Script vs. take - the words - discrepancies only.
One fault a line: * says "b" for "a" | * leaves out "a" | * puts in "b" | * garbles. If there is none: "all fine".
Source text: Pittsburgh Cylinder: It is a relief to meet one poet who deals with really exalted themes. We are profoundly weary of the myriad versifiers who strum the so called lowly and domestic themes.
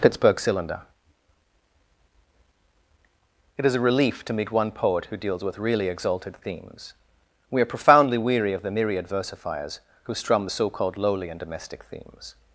all fine